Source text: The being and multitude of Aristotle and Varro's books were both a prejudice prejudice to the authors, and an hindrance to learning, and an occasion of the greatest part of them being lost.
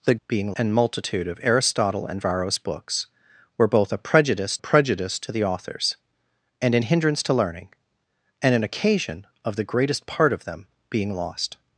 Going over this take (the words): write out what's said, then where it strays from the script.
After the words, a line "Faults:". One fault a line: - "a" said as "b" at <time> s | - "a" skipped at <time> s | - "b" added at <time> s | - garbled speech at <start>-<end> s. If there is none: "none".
The being and multitude of Aristotle and Varro's books were both a prejudice prejudice to the authors, and an hindrance to learning, and an occasion of the greatest part of them being lost.
Faults:
none